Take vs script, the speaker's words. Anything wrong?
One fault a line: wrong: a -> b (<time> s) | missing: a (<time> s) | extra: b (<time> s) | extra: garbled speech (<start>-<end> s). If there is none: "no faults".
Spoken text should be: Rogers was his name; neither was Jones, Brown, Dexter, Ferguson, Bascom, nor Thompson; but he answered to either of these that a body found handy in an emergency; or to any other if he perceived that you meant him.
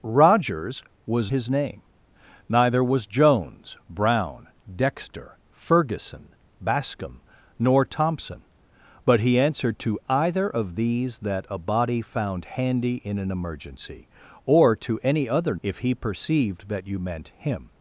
no faults